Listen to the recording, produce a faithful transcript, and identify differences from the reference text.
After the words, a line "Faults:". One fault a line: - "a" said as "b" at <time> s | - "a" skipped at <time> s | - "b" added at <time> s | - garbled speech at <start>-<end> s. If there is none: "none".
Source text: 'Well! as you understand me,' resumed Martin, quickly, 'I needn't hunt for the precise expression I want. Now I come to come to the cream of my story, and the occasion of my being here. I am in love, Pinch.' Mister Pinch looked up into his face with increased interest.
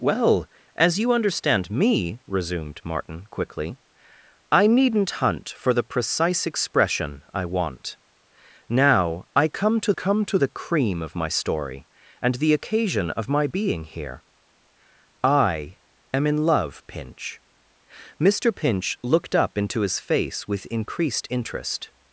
'Well! as you understand me,' resumed Martin, quickly, 'I needn't hunt for the precise expression I want. Now I come to come to the cream of my story, and the occasion of my being here. I am in love, Pinch.' Mister Pinch looked up into his face with increased interest.
Faults:
none